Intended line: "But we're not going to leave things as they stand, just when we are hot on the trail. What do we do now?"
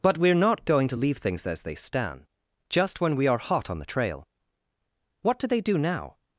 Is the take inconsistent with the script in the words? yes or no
yes